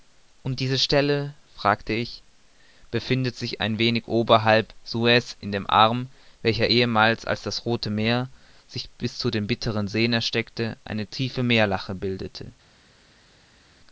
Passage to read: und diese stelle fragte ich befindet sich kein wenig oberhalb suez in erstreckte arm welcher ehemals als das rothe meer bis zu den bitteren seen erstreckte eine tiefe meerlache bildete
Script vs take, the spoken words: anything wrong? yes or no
yes